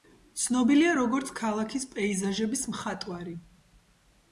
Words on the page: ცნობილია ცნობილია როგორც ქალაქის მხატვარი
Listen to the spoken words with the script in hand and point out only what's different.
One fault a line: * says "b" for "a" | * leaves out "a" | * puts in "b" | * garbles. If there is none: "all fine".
* leaves out "ცნობილია"
* puts in "პეიზაჟების"